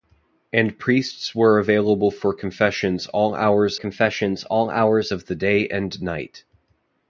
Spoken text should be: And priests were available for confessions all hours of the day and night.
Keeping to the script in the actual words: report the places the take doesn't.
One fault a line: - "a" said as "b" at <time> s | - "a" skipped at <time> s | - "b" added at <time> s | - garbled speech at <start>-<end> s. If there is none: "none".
- "confessions all hours" added at 3.7 s